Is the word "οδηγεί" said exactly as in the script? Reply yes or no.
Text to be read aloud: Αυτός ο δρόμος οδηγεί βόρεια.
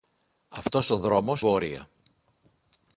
no